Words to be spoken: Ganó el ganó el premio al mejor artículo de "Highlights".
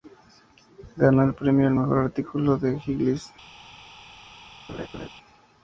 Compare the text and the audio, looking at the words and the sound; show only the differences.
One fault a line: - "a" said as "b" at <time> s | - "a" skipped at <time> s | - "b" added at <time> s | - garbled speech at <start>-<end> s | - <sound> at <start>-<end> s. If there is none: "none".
- "ganó el" skipped at 1.4 s
- laugh at 4.7-5.1 s